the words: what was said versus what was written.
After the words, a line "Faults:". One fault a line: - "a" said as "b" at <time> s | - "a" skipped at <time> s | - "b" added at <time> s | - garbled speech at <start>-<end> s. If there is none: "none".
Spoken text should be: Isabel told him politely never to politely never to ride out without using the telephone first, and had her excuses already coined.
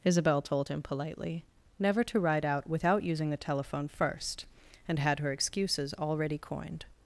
Isabel told him politely never to ride out without using the telephone first, and had her excuses already coined.
Faults:
- "politely never to" skipped at 2.2 s